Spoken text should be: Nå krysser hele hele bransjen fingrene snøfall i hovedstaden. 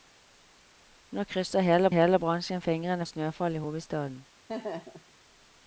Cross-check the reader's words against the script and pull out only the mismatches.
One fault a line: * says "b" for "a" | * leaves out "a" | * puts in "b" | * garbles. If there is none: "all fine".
all fine